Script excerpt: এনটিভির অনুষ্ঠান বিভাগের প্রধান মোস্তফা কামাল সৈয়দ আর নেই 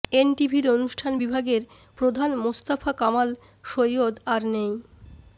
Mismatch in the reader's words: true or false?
false